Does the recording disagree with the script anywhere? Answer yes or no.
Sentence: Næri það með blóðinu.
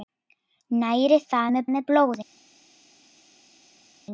yes